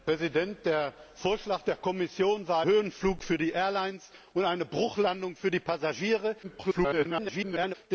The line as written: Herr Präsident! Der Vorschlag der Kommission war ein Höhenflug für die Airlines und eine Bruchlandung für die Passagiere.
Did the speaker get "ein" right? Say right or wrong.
wrong